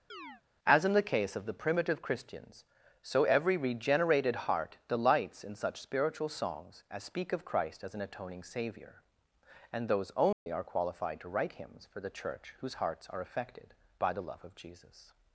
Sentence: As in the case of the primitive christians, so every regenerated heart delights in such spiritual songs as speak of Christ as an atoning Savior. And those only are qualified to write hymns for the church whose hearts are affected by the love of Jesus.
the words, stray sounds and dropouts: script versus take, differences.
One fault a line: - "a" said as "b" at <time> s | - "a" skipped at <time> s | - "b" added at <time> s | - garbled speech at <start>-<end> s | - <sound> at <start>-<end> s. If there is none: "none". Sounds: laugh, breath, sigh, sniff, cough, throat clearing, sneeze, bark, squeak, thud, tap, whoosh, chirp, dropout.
- chirp at 0.1-0.4 s
- dropout at 10.3-10.5 s